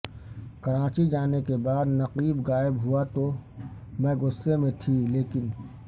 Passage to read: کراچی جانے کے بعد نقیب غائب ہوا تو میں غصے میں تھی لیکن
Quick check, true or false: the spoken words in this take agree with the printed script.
true